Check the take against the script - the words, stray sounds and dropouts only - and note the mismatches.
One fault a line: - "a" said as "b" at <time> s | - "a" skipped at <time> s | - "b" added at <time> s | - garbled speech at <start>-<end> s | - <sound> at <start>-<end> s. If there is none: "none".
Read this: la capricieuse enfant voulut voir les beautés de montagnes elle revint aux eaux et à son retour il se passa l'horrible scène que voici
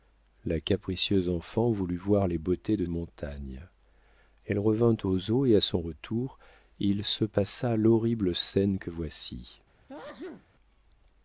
- sneeze at 9.9-10.5 s